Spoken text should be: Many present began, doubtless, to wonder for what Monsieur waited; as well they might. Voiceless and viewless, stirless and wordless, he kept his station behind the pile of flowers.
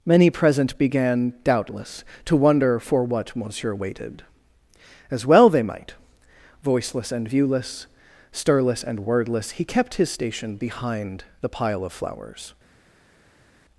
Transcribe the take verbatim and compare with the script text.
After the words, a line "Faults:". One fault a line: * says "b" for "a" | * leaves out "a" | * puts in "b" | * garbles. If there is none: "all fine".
Many present began, doubtless, to wonder for what Monsieur waited; as well they might. Voiceless and viewless, stirless and wordless, he kept his station behind the pile of flowers.
Faults:
all fine